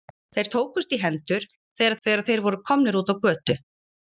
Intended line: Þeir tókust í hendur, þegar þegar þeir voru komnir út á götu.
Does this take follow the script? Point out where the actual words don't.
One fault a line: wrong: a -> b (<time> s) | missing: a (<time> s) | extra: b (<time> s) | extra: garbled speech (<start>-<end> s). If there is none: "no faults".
no faults